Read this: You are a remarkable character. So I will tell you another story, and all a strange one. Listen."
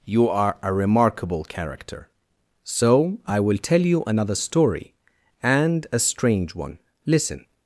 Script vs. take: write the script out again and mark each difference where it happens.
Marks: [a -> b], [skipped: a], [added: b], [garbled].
You are a remarkable character. So I will tell you another story, and [skipped: all] a strange one. Listen."